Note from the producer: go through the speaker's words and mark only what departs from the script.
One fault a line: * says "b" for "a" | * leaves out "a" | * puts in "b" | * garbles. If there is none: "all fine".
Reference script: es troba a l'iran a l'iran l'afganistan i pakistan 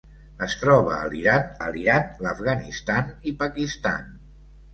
all fine